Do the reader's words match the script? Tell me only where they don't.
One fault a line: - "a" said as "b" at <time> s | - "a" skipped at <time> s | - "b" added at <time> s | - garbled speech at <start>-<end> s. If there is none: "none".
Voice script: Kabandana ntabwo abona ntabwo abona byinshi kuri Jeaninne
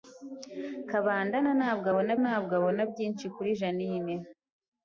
none